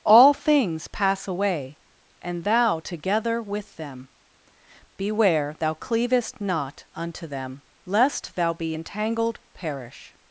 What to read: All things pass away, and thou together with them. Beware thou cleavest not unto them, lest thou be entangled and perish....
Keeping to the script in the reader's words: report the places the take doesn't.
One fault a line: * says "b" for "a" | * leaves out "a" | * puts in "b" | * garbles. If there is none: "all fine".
* leaves out "and"